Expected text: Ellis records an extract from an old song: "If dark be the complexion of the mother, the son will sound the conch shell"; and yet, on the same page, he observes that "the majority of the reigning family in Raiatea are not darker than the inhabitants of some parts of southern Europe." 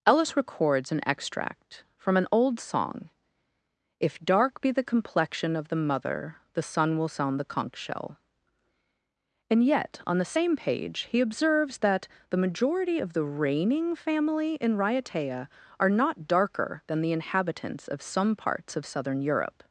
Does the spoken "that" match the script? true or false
true